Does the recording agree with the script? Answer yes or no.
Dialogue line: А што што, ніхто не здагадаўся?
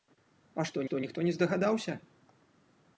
yes